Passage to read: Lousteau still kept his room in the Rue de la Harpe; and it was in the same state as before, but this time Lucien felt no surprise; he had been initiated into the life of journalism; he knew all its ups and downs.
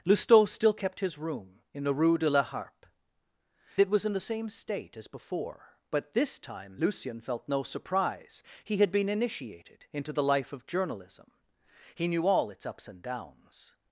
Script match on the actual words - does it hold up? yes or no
no